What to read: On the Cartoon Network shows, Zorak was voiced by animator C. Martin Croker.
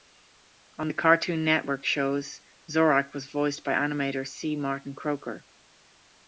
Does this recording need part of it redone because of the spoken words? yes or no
no